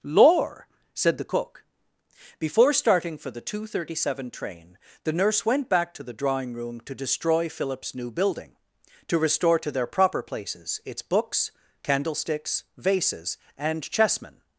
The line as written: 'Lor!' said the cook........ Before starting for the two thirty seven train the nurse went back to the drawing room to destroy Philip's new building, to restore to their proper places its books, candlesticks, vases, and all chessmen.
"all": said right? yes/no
no